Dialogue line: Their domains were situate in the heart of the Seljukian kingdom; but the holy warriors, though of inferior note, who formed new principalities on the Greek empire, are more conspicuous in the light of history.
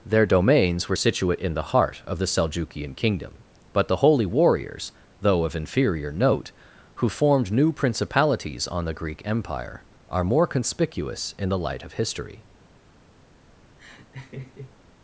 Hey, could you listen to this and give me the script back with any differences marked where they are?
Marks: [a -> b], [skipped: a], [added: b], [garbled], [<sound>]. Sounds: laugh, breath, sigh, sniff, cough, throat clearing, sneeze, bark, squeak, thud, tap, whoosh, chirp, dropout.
Their domains were situate in the heart of the Seljukian kingdom; but the holy warriors, though of inferior note, who formed new principalities on the Greek empire, are more conspicuous in the light of history. [laugh]